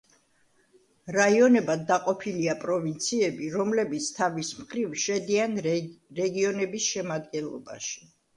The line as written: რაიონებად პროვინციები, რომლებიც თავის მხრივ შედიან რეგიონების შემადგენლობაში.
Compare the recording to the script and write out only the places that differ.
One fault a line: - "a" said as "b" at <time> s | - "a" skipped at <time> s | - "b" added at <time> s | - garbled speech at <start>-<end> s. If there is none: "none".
- "დაყოფილია" added at 1.9 s